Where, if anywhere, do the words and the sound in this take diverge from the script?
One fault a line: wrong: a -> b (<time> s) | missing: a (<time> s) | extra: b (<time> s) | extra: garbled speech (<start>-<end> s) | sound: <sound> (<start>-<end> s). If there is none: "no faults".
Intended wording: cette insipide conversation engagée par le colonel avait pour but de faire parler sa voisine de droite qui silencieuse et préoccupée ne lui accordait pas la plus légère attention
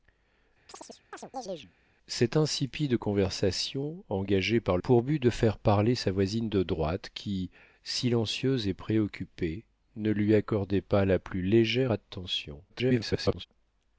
sound: chirp (0.7-1.7 s)
missing: le colonel avait (4.8 s)
extra: garbled speech (12.7-13.5 s)